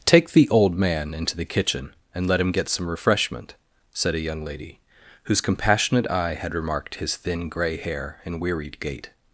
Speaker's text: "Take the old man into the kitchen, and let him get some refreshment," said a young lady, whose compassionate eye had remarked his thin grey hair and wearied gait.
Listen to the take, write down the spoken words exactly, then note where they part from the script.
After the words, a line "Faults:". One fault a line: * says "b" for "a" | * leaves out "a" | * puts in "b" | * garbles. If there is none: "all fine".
"Take the old man into the kitchen, and let him get some refreshment," said a young lady, whose compassionate eye had remarked his thin grey hair and wearied gait.
Faults:
all fine